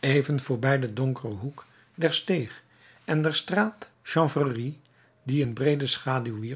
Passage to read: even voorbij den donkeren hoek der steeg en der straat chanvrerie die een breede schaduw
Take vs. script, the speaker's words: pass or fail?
pass